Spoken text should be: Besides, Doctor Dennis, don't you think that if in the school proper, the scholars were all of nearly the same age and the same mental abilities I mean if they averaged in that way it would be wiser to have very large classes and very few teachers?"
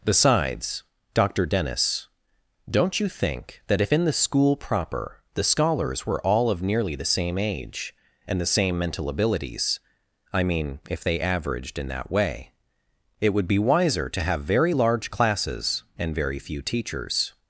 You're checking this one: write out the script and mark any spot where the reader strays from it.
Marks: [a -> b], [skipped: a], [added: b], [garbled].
Besides, Doctor Dennis, don't you think that if in the school proper, the scholars were all of nearly the same age and the same mental abilities I mean if they averaged in that way it would be wiser to have very large classes and very few teachers?"